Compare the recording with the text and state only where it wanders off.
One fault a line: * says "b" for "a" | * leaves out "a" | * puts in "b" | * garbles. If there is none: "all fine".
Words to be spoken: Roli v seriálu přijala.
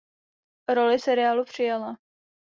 all fine